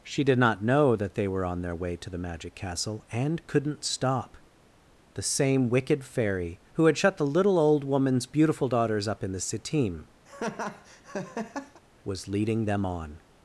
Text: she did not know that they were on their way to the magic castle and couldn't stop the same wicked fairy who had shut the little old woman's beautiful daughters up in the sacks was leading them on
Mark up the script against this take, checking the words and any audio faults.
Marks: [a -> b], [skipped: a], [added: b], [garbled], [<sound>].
she did not know that they were on their way to the magic castle and couldn't stop the same wicked fairy who had shut the little old woman's beautiful daughters up in the [sacks -> sitim] [laugh] was leading them on